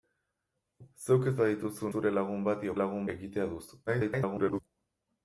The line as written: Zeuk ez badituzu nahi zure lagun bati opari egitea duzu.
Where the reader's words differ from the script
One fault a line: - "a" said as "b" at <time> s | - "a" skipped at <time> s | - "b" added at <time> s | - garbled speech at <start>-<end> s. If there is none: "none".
- "nahi" skipped at 1.9 s
- "opari" said as "lagun" at 2.8 s
- garbled speech at 3.9-4.6 s